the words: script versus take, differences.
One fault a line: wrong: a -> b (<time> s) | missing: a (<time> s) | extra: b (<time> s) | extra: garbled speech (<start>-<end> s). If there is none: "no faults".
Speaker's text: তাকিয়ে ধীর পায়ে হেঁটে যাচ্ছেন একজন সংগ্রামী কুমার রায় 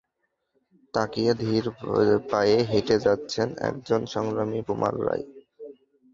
no faults